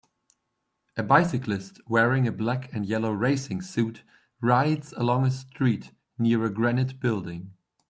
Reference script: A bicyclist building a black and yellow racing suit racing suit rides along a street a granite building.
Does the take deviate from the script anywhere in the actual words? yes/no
yes